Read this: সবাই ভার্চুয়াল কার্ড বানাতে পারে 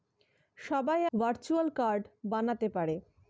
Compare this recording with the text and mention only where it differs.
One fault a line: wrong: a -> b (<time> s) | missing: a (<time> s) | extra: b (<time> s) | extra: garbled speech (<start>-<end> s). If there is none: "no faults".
no faults